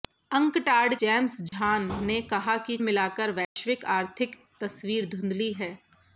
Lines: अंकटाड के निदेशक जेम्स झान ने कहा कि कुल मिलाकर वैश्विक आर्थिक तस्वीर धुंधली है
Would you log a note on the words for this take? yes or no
yes